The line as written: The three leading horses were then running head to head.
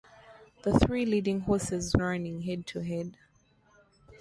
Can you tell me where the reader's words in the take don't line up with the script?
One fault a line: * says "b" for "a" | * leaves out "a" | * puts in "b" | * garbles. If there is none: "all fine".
* leaves out "were then"